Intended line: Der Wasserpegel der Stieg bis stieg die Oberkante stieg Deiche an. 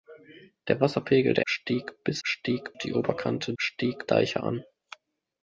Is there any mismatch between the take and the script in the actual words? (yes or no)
no